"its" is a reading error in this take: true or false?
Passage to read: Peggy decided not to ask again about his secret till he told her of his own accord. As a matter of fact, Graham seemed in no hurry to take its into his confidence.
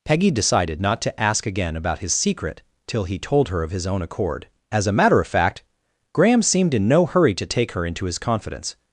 true